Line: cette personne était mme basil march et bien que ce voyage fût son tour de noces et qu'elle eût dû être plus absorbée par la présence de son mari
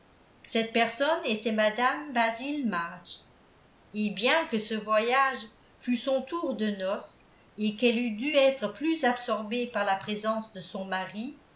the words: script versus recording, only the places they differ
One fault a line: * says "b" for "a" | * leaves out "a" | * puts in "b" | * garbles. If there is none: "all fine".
all fine